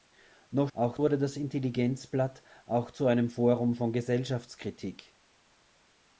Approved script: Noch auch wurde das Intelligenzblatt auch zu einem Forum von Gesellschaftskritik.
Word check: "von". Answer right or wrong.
right